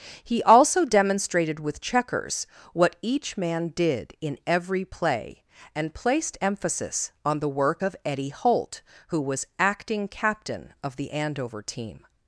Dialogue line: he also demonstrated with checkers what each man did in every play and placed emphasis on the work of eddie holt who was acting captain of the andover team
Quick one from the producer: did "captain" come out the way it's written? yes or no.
yes